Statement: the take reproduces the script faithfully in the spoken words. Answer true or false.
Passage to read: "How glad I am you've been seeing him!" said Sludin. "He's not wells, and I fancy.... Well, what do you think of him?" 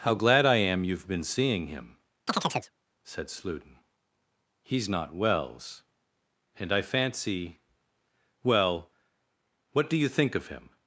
true